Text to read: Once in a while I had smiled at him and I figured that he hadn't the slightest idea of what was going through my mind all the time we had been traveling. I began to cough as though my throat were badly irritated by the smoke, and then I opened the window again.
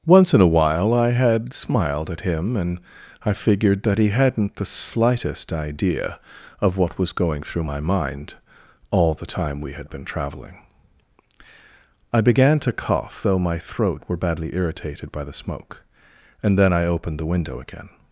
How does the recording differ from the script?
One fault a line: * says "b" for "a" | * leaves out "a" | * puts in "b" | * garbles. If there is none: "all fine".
* leaves out "as"